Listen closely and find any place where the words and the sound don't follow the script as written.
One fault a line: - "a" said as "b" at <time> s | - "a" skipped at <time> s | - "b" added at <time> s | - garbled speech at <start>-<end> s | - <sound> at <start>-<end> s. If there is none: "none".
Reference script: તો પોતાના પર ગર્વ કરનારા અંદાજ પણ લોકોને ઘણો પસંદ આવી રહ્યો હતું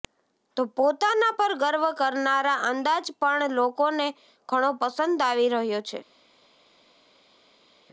- "હતું" said as "છે" at 5.8 s